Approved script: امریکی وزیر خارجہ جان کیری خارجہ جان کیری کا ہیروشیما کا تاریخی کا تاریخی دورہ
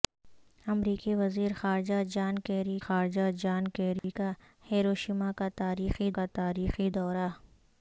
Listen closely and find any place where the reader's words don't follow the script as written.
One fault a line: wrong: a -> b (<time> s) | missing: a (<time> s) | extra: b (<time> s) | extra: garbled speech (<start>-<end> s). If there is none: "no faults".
no faults